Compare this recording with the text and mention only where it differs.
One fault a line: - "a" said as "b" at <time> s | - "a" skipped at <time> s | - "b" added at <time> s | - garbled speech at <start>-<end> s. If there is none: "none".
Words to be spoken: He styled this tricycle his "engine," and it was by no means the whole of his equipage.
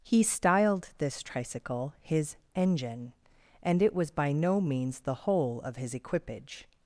none